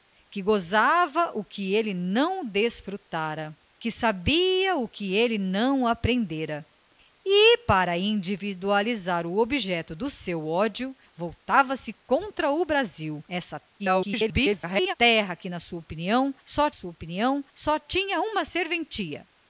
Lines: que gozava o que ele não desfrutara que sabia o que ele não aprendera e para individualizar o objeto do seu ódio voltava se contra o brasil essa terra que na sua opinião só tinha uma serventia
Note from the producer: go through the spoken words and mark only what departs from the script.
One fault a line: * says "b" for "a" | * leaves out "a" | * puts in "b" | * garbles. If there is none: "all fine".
* garbles
* puts in "sua opinião só"